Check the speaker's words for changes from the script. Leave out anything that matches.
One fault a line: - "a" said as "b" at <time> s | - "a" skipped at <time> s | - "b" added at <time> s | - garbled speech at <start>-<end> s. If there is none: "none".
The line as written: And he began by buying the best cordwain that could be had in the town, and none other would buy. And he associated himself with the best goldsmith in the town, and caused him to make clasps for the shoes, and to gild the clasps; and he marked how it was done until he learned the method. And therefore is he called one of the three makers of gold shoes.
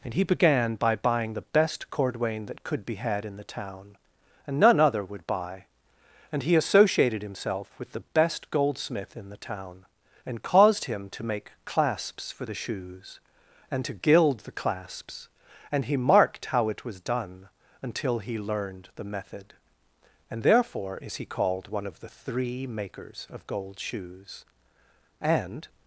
- "And" added at 25.2 s